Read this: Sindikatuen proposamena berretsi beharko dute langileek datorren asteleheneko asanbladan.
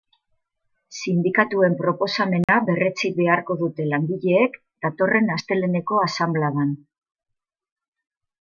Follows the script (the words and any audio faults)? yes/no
no